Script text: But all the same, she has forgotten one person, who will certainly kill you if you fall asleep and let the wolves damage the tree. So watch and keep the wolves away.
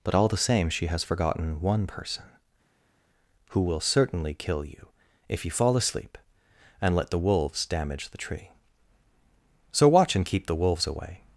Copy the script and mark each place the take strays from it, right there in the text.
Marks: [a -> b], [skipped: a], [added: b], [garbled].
But all the same, she has forgotten one person, who will certainly kill you if you fall asleep and let the wolves damage the tree. So watch and keep the wolves away.